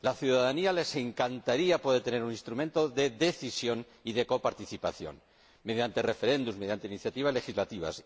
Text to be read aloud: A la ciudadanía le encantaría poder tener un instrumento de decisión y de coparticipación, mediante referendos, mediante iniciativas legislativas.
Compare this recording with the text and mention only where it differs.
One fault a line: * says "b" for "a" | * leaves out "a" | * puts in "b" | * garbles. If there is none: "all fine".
all fine